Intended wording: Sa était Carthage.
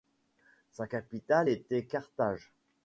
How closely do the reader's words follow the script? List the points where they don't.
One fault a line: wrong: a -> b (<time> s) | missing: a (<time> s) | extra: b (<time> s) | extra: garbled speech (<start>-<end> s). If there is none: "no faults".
extra: capitale (0.8 s)